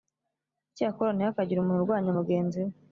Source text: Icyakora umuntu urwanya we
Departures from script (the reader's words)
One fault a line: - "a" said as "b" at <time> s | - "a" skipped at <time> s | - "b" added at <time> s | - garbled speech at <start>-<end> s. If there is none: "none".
- "ntihakagire" added at 1.1 s
- "mugenzi" added at 2.2 s